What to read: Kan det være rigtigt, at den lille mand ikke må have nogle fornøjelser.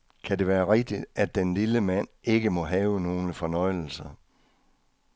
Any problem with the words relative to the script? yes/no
no